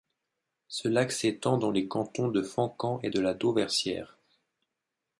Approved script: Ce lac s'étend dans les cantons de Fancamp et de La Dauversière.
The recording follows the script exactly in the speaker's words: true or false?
true